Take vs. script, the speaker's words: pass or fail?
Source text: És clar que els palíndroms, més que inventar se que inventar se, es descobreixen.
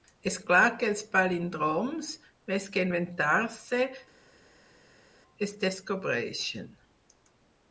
fail